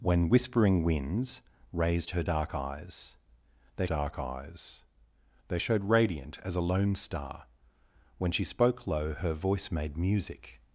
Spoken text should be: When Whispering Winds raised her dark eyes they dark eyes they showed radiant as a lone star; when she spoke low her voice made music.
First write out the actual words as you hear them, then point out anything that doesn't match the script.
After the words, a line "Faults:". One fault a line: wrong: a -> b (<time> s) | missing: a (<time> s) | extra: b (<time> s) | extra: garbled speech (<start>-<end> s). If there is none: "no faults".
When Whispering Winds raised her dark eyes they dark eyes they showed radiant as a lone star; when she spoke low her voice made music.
Faults:
no faults